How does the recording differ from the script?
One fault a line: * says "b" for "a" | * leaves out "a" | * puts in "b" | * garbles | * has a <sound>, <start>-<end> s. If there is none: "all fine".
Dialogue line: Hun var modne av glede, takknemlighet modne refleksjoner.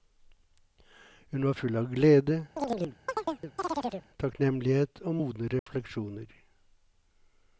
* says "full" for "modne"
* has a chirp, 2.6-4.1 s
* puts in "og"
* has a dropout, 5.6-5.7 s